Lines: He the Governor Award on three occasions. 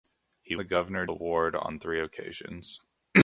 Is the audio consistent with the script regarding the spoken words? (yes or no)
yes